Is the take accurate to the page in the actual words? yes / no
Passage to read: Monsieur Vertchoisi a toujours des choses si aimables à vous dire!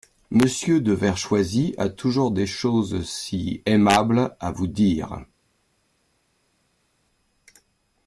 no